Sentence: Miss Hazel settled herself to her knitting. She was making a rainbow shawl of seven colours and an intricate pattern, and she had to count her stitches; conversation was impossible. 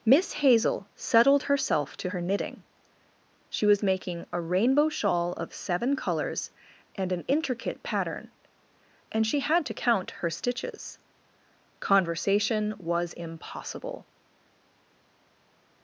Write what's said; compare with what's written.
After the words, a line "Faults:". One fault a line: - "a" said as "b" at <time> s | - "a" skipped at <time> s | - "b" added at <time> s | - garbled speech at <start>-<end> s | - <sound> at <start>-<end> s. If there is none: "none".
Miss Hazel settled herself to her knitting. She was making a rainbow shawl of seven colours and an intricate pattern, and she had to count her stitches; conversation was impossible.
Faults:
none